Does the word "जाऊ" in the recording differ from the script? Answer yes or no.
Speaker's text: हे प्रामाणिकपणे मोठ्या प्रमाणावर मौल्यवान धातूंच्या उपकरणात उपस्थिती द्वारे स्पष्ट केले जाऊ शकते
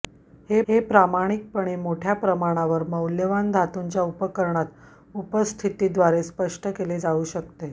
no